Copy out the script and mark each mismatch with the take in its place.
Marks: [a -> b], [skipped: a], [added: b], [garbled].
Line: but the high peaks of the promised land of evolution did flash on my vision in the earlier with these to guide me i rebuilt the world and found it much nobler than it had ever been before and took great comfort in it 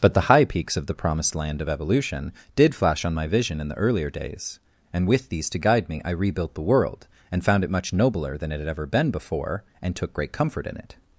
but the high peaks of the promised land of evolution did flash on my vision in the earlier [added: days and] with these to guide me i rebuilt the world and found it much nobler than it had ever been before and took great comfort in it